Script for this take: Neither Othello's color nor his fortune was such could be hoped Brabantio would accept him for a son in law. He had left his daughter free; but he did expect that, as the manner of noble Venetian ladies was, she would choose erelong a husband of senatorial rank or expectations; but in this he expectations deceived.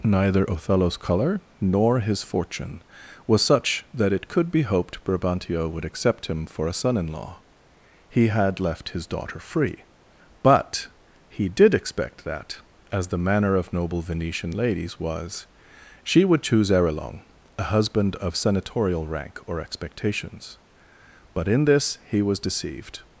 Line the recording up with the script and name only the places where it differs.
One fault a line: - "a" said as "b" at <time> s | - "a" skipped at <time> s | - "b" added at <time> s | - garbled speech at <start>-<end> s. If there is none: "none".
- "that it" added at 3.9 s
- "expectations" said as "was" at 22.2 s